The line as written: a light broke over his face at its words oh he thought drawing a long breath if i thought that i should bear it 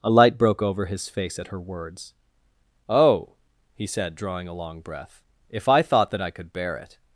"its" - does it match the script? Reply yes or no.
no